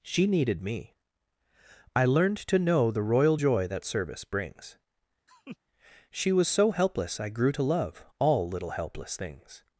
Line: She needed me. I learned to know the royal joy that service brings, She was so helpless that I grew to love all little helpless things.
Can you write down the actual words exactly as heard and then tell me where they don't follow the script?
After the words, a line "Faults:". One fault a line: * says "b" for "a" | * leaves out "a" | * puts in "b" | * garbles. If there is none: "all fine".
She needed me. I learned to know the royal joy that service brings, She was so helpless I grew to love all little helpless things.
Faults:
* leaves out "that"